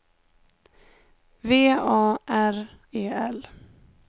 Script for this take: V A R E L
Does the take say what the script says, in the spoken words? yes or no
yes